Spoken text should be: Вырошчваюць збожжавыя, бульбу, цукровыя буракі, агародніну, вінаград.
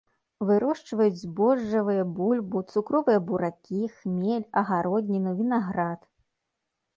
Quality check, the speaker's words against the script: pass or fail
fail